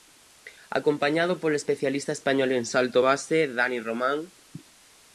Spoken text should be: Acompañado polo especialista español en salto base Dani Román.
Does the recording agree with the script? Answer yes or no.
yes